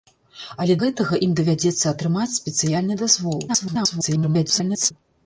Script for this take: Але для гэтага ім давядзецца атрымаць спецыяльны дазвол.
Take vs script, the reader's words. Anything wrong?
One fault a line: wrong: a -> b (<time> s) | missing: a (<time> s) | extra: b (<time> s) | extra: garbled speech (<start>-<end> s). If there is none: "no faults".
missing: для (0.8 s)
extra: garbled speech (3.5-4.9 s)